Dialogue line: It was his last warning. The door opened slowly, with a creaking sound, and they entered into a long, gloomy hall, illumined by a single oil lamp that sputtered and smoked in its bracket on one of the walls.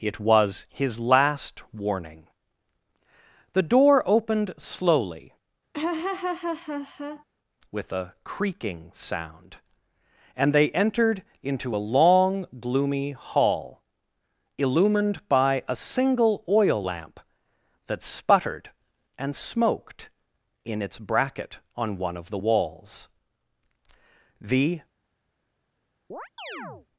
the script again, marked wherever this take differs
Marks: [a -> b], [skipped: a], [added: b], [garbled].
It was his last warning. The door opened slowly, with a creaking sound, and they entered into a long, gloomy hall, illumined by a single oil lamp that sputtered and smoked in its bracket on one of the walls. [added: The]